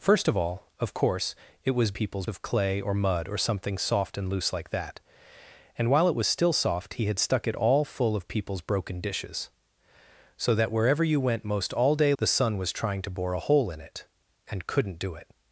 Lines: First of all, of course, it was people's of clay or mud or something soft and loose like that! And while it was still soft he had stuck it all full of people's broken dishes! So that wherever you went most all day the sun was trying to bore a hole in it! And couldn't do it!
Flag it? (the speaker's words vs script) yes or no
no